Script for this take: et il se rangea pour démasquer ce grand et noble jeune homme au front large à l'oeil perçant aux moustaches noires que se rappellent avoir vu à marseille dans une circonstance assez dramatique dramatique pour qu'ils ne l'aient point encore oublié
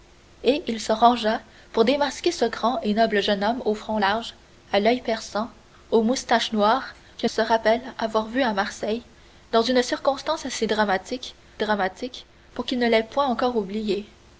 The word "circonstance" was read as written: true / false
true